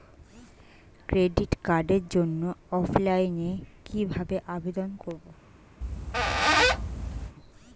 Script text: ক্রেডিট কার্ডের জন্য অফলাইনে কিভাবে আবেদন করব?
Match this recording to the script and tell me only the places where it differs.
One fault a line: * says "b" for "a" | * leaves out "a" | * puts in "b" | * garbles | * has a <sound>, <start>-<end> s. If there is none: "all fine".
* has a squeak, 5.8-7.4 s